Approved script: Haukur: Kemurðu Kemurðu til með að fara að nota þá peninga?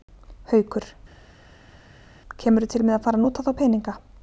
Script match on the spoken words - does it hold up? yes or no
no